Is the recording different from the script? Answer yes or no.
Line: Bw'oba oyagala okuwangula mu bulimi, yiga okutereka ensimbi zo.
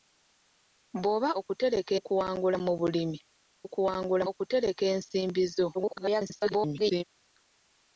yes